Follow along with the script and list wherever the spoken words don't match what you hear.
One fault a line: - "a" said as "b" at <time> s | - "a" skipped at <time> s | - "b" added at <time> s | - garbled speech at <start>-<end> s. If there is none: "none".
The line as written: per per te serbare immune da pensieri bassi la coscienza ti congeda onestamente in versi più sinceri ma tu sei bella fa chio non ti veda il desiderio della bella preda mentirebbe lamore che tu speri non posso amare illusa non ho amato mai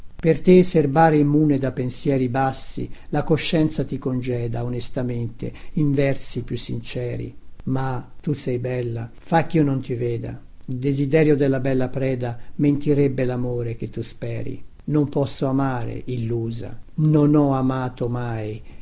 - "per" skipped at 0.4 s